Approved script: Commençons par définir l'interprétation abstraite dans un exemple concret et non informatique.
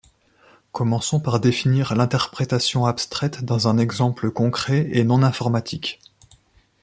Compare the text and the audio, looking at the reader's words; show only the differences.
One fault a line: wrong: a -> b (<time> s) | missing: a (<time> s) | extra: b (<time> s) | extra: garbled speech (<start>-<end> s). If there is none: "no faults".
no faults